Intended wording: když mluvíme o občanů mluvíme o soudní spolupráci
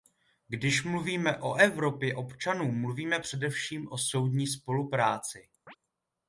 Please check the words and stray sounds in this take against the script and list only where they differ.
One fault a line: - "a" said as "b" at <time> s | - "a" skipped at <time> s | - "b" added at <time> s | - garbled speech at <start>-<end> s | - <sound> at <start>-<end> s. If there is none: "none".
- "evropě" added at 1.6 s
- "především" added at 3.2 s
- chirp at 5.7-5.8 s